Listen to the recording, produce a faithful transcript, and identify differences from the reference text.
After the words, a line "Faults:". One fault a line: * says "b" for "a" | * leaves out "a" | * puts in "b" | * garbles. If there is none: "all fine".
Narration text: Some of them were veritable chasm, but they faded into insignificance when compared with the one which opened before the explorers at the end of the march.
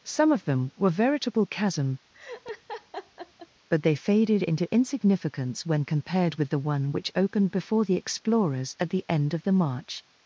Some of them were veritable chasm, but they faded into insignificance when compared with the one which opened before the explorers at the end of the march.
Faults:
all fine